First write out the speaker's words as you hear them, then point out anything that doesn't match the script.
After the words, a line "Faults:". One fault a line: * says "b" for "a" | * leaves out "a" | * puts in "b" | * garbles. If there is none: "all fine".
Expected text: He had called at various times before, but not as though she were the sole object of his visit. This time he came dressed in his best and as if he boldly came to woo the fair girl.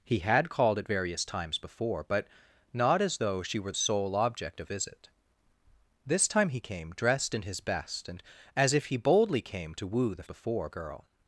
He had called at various times before, but not as though she were sole object of visit. This time he came dressed in his best and as if he boldly came to woo the before girl.
Faults:
* leaves out "the"
* leaves out "his"
* says "before" for "fair"